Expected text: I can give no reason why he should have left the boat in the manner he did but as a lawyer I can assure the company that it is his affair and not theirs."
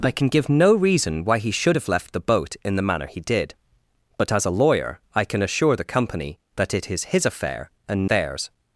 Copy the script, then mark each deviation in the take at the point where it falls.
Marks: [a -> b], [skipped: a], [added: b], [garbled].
I can give no reason why he should have left the boat in the manner he did but as a lawyer I can assure the company that it is his affair and [skipped: not] theirs."